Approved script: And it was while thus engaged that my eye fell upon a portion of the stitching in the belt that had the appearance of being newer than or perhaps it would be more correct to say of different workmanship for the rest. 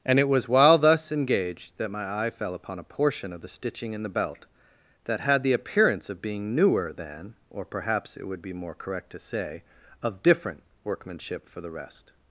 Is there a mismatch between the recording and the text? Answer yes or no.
no